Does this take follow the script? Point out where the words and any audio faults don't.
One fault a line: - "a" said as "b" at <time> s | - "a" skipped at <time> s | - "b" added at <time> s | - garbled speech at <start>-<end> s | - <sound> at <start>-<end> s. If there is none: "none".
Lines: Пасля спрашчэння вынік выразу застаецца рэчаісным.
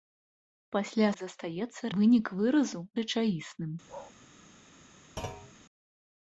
- "спрашчэння" said as "застаецца" at 1.2 s
- "застаецца" skipped at 2.8 s
- bark at 3.9-4.1 s
- thud at 5.2-5.5 s